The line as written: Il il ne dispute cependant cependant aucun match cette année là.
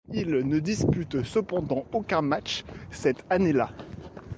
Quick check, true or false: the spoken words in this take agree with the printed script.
false